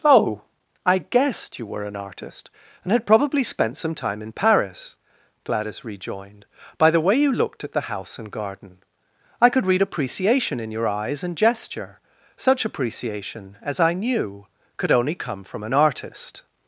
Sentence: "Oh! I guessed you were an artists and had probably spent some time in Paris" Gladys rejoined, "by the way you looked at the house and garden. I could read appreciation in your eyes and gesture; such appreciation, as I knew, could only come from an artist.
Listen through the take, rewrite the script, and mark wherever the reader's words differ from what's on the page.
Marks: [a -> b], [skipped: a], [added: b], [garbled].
"Oh! I guessed you were an [artists -> artist] and had probably spent some time in Paris" Gladys rejoined, "by the way you looked at the house and garden. I could read appreciation in your eyes and gesture; such appreciation, as I knew, could only come from an artist.